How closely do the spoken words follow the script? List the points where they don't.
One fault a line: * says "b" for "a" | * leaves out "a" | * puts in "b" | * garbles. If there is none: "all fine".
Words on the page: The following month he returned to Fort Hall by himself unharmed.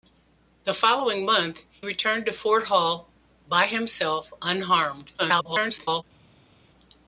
* leaves out "he"
* garbles